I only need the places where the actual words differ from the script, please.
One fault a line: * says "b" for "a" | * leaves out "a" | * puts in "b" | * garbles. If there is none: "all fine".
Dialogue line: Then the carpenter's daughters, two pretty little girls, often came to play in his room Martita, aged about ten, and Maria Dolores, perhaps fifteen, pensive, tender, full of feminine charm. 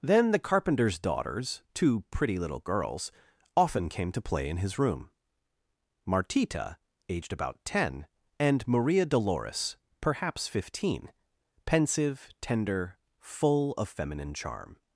all fine